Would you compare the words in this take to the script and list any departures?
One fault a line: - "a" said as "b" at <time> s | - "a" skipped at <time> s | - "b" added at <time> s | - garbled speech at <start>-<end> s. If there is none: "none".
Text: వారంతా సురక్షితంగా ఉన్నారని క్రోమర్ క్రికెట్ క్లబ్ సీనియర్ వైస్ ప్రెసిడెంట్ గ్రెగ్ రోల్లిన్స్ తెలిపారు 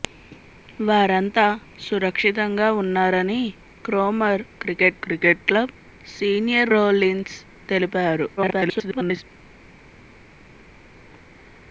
- "క్రికెట్" added at 5.0 s
- "వైస్ ప్రెసిడెంట్ గ్రెగ్" skipped at 6.7 s
- garbled speech at 8.4-9.2 s